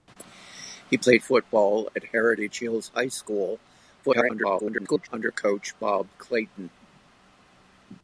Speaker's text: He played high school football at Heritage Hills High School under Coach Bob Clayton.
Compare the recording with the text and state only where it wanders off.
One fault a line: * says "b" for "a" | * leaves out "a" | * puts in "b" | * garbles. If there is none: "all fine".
* leaves out "high school"
* garbles